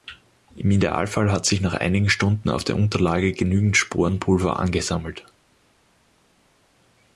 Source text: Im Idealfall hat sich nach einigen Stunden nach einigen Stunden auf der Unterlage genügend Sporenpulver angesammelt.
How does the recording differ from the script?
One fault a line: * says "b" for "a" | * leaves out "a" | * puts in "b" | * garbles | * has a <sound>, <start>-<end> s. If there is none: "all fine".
* leaves out "nach einigen Stunden"